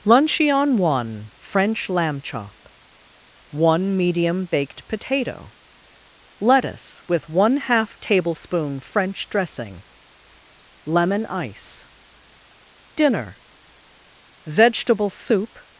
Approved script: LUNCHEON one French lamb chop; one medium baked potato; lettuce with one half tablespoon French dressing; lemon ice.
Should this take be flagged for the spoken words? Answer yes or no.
yes